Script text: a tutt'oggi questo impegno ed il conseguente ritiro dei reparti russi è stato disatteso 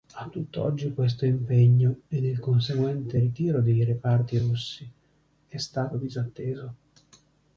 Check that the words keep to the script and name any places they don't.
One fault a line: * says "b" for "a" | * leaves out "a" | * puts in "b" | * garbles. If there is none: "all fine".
all fine